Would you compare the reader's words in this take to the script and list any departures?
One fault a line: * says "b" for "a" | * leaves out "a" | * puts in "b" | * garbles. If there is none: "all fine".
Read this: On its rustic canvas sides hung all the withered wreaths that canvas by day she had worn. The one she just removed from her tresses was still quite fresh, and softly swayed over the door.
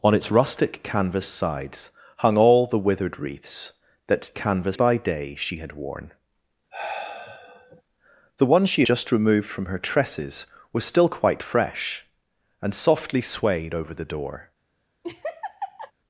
all fine